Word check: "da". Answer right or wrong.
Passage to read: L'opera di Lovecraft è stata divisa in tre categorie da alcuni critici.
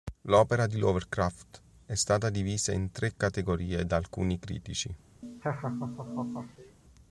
right